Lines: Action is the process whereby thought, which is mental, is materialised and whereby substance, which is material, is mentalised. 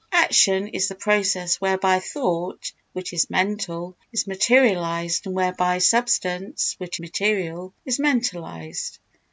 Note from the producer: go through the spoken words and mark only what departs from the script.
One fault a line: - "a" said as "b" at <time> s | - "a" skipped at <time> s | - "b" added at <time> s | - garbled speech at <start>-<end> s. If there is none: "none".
- "is" skipped at 7.0 s